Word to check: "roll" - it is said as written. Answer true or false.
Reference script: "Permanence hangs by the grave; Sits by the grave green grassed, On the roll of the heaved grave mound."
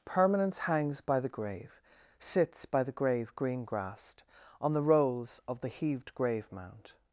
false